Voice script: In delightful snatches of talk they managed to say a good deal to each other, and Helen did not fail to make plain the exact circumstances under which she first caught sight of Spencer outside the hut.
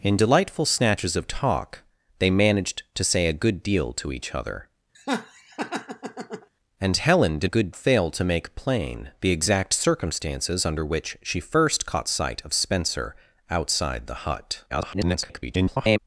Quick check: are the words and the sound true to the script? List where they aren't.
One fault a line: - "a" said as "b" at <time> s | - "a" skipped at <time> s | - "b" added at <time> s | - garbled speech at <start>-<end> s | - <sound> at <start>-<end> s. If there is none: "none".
- laugh at 4.9-6.5 s
- "not" said as "good" at 7.4 s
- garbled speech at 14.7-16.0 s